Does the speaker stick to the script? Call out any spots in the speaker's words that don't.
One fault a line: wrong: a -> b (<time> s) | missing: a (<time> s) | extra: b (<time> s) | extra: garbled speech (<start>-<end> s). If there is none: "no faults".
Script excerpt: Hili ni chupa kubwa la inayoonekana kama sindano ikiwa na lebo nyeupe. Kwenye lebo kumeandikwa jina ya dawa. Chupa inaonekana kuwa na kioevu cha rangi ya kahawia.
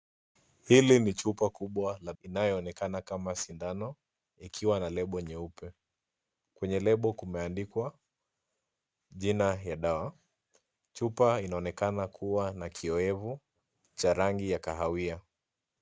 no faults